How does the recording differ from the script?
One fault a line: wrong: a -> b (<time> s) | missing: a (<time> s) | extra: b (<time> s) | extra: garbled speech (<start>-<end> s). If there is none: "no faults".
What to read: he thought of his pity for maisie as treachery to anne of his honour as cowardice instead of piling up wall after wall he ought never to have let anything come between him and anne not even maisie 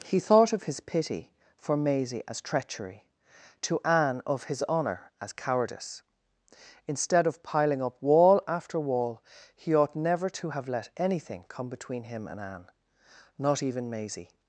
no faults